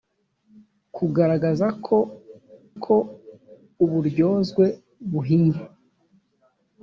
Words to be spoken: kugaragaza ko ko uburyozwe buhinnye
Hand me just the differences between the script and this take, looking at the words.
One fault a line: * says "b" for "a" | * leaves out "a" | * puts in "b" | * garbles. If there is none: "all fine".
all fine